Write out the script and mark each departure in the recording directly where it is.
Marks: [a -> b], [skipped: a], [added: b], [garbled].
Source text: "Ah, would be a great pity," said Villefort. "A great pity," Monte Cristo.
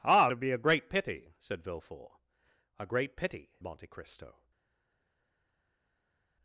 "Ah, would be a great pity," said Villefort. "A great pity," Monte Cristo.